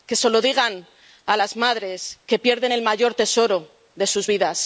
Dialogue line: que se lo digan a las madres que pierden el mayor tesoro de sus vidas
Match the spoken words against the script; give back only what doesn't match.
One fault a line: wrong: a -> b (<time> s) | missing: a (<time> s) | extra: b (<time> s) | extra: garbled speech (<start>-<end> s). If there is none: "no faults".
no faults